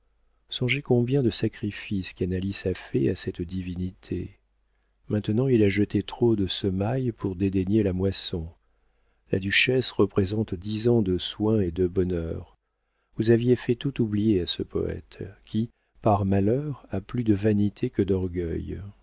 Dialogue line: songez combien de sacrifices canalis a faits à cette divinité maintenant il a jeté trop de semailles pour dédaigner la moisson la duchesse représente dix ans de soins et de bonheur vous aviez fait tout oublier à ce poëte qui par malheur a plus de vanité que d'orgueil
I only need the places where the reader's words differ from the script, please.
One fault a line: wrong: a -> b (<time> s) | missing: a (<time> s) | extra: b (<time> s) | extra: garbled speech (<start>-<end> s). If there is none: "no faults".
no faults